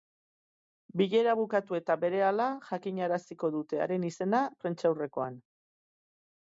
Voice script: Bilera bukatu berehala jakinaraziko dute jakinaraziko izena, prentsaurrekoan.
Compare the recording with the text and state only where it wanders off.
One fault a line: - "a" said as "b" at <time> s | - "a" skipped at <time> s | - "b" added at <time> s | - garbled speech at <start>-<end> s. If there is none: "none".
- "eta" added at 1.8 s
- "jakinaraziko" said as "haren" at 3.9 s